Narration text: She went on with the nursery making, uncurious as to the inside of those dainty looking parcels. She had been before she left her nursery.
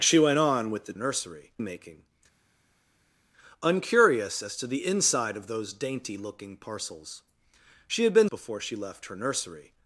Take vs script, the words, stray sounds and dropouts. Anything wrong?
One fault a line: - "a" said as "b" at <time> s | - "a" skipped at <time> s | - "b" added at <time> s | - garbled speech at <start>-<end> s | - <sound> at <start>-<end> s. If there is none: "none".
none